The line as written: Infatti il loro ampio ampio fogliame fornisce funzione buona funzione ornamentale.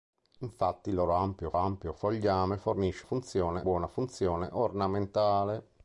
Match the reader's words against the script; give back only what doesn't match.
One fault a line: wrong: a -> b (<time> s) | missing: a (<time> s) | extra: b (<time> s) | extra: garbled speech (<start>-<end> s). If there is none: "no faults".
no faults